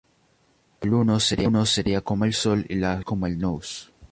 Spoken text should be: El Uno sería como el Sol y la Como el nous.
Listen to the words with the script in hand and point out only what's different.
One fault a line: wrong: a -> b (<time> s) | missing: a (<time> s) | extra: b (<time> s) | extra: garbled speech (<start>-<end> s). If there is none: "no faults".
no faults